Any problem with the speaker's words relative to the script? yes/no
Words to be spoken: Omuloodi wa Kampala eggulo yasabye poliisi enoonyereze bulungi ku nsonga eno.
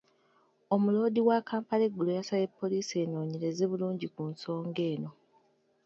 no